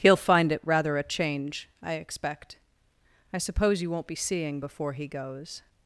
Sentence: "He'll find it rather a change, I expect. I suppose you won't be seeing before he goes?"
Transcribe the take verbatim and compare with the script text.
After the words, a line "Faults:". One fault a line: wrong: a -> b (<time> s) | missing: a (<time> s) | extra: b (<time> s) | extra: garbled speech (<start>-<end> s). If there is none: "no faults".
"He'll find it rather a change, I expect. I suppose you won't be seeing before he goes?"
Faults:
no faults